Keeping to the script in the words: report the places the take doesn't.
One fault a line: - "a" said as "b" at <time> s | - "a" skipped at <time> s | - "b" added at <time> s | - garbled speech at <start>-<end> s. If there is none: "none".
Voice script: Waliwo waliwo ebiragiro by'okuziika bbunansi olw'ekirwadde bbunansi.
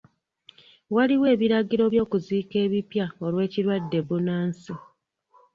- "waliwo" skipped at 1.2 s
- "bbunansi" said as "ebipya" at 2.6 s